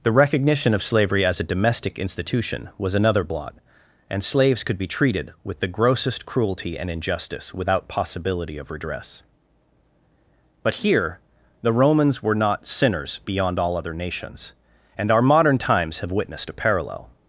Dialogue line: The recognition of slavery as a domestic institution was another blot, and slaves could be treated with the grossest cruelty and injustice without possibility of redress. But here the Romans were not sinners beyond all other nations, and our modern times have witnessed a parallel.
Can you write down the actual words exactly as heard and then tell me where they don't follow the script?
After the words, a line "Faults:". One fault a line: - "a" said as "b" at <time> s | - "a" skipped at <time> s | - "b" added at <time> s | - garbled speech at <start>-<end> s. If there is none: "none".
The recognition of slavery as a domestic institution was another blot, and slaves could be treated with the grossest cruelty and injustice without possibility of redress. But here the Romans were not sinners beyond all other nations, and our modern times have witnessed a parallel.
Faults:
none